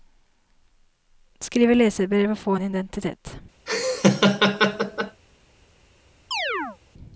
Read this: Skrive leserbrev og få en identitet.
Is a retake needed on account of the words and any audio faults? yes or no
yes